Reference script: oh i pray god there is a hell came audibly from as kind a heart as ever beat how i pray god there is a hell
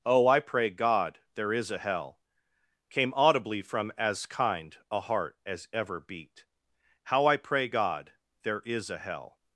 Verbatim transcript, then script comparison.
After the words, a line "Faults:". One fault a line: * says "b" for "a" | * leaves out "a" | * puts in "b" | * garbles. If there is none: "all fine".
oh i pray god there is a hell came audibly from as kind a heart as ever beat how i pray god there is a hell
Faults:
all fine